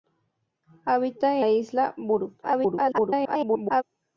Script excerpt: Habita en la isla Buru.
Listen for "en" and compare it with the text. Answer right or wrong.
wrong